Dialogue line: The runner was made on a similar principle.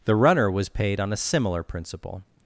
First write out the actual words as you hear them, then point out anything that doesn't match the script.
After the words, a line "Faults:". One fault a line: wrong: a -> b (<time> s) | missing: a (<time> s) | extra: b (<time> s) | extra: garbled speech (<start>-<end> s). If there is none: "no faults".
The runner was paid on a similar principle.
Faults:
wrong: made -> paid (0.7 s)